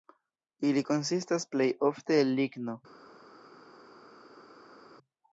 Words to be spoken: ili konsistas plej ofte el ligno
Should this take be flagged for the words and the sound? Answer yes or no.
no